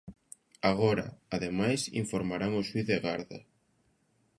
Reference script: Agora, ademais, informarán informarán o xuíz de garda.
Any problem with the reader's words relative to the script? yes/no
yes